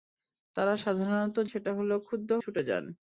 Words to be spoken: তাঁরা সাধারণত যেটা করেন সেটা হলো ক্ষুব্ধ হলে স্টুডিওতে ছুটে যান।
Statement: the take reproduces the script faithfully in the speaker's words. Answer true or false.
false